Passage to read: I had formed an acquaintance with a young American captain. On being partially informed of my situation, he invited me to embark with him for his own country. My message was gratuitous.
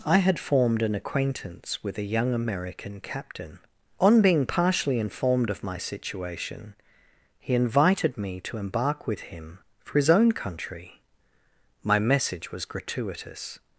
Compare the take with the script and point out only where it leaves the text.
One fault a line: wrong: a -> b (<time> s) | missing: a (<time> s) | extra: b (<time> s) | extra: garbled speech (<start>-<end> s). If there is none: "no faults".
no faults